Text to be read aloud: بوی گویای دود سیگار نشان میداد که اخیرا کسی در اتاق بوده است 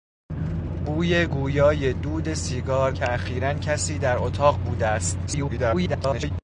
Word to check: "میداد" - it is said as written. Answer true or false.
false